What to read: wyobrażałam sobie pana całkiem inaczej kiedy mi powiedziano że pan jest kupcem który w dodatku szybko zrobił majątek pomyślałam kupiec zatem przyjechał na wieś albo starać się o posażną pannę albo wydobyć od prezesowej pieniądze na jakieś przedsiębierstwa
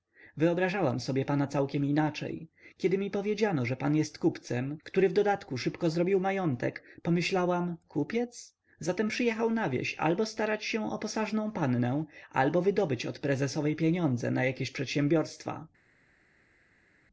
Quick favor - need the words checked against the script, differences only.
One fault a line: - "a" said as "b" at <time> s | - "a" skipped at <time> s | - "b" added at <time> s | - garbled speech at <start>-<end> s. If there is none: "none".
none